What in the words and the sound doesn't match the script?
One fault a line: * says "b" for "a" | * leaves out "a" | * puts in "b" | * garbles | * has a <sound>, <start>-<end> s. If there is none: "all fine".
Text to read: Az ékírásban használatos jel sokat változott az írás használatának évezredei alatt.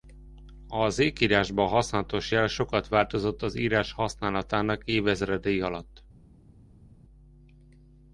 all fine